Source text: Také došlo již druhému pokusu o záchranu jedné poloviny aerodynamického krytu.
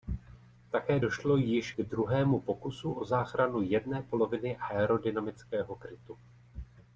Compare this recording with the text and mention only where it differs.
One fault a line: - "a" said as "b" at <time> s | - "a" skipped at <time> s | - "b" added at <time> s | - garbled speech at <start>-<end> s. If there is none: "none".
none